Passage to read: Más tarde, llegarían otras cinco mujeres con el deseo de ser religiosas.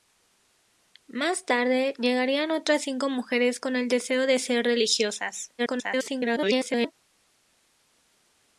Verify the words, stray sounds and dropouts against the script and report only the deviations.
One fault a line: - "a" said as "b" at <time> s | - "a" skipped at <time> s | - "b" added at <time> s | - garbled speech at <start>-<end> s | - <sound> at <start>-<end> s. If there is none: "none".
- garbled speech at 5.6-6.9 s